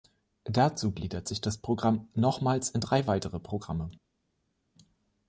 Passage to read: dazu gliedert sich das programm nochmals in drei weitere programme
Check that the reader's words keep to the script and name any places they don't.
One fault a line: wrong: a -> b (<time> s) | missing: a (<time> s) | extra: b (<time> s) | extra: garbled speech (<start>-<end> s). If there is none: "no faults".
no faults